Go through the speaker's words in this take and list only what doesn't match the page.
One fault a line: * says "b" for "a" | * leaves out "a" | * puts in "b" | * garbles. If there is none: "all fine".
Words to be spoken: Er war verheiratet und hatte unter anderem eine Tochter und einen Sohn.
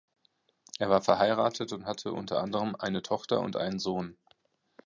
all fine